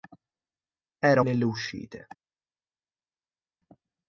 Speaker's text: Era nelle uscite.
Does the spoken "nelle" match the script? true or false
true